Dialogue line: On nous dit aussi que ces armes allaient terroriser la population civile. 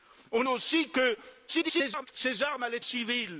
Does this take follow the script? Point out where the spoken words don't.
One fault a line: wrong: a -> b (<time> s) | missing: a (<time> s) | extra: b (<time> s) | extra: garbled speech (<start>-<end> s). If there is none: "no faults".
missing: nous dit (0.4 s)
extra: garbled speech (1.5-2.1 s)
missing: terroriser la population (2.8 s)